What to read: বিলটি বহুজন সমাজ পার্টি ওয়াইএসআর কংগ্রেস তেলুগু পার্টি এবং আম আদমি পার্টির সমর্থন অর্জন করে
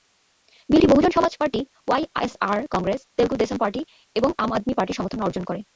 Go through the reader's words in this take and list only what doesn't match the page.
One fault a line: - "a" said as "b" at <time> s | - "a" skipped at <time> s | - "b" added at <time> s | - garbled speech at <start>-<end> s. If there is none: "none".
- "দেশম" added at 3.4 s